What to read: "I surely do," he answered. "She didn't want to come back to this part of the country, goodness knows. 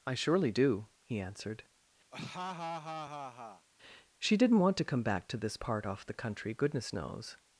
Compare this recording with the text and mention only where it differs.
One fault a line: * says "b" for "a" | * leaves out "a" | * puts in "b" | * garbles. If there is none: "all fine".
* says "off" for "of"